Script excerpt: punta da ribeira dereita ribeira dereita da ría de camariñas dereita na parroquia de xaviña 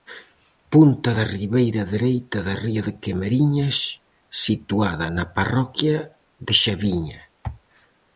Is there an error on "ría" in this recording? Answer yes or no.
no